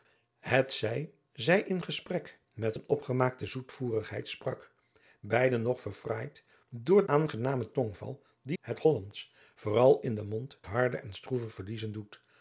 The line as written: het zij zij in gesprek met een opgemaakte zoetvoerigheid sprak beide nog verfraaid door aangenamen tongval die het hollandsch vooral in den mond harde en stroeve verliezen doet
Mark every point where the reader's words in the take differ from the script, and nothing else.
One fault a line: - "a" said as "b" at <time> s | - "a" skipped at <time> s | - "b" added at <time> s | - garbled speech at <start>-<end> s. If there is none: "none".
none